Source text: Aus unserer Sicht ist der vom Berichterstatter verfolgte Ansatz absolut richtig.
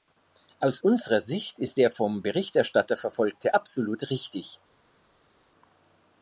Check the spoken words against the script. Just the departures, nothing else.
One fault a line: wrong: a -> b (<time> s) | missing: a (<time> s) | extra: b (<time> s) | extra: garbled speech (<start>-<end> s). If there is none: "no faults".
missing: Ansatz (3.5 s)